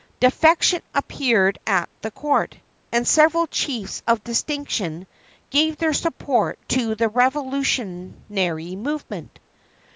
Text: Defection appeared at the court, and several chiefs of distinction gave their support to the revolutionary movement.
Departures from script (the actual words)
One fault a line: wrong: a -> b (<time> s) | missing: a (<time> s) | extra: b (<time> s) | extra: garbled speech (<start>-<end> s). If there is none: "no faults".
no faults